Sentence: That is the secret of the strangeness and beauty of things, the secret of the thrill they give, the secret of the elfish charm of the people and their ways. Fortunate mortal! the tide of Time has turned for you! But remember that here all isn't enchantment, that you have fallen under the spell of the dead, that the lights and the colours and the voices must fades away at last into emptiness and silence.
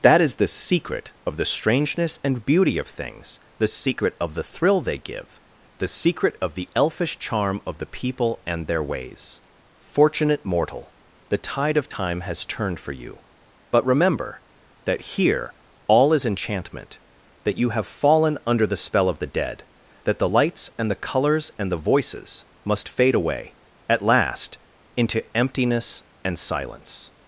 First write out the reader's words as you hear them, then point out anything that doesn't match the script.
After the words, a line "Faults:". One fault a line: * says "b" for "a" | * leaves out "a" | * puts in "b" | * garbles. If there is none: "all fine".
That is the secret of the strangeness and beauty of things, the secret of the thrill they give, the secret of the elfish charm of the people and their ways. Fortunate mortal! the tide of Time has turned for you! But remember that here all is enchantment, that you have fallen under the spell of the dead, that the lights and the colours and the voices must fade away at last into emptiness and silence.
Faults:
* says "is" for "isn't"
* says "fade" for "fades"